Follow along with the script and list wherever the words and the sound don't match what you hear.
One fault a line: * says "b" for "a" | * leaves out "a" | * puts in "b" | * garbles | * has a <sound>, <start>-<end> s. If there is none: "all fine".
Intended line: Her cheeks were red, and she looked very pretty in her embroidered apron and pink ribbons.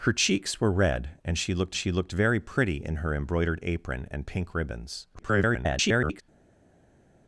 * puts in "she looked"
* garbles